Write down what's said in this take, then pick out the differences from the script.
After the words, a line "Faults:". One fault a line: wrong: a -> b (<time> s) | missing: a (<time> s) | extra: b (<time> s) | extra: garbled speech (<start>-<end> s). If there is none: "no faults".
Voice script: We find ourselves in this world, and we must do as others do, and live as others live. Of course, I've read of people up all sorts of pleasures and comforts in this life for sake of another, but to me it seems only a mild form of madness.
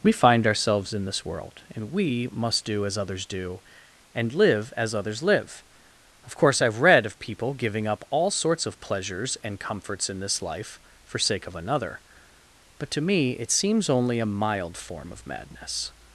We find ourselves in this world, and we must do as others do, and live as others live. Of course, I've read of people giving up all sorts of pleasures and comforts in this life for sake of another, but to me it seems only a mild form of madness.
Faults:
extra: giving (7.5 s)